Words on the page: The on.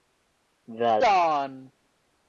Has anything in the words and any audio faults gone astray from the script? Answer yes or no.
no